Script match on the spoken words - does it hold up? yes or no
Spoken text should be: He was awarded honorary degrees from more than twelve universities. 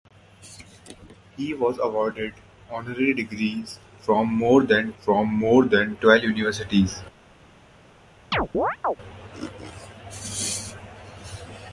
no